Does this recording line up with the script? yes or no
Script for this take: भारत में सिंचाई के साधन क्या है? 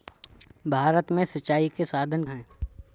no